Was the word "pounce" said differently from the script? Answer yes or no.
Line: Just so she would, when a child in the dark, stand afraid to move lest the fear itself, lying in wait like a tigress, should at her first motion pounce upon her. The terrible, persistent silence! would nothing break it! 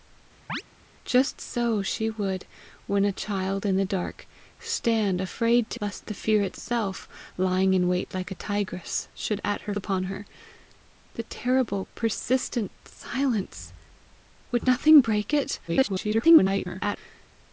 yes